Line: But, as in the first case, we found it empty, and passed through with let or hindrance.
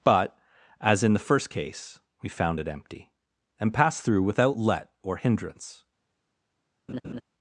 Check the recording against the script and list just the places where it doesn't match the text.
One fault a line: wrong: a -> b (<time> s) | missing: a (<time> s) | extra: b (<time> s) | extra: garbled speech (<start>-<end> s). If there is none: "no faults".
wrong: with -> without (4.2 s)